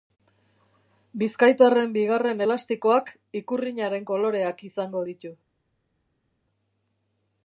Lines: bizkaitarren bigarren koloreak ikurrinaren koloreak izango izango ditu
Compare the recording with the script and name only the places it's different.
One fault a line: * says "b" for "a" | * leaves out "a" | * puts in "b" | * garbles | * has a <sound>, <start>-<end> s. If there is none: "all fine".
* says "elastikoak" for "koloreak"
* leaves out "izango"